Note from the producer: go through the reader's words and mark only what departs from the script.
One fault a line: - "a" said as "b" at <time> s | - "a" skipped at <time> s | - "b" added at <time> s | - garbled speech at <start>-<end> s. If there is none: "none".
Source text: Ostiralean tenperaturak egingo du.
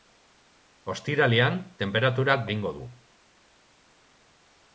none